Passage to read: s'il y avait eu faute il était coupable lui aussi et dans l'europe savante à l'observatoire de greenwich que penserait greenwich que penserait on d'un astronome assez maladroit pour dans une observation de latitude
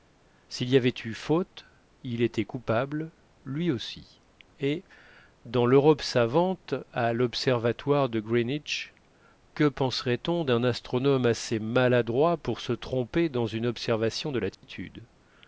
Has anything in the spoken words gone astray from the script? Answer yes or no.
yes